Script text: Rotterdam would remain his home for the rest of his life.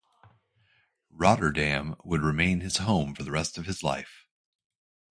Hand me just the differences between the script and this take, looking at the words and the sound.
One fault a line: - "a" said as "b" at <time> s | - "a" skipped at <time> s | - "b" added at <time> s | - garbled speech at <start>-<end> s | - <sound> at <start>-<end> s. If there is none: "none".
none